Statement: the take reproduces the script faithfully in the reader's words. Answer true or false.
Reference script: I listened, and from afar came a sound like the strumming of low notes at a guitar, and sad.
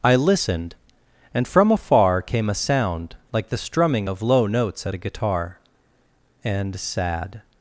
true